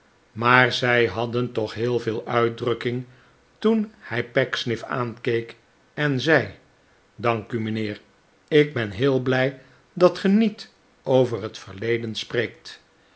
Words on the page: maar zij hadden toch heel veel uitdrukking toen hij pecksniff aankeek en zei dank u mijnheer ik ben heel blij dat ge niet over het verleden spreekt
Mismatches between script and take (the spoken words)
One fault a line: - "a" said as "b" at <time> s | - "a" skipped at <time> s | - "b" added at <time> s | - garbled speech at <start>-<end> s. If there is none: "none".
none